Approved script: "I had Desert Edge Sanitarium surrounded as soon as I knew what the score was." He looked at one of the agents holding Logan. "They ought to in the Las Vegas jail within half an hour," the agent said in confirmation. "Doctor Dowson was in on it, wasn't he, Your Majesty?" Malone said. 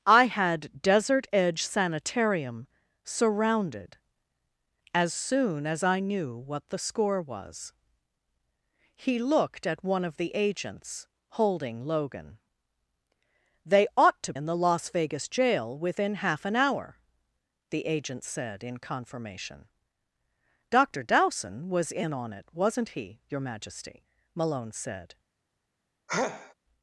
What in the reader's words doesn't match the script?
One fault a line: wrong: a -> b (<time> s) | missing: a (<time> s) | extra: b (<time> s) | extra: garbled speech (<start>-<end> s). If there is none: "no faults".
no faults